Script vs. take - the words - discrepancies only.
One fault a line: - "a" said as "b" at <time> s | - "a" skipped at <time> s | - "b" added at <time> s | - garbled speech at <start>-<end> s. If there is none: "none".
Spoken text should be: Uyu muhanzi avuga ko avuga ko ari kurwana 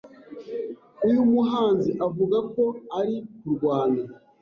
- "avuga ko" skipped at 2.6 s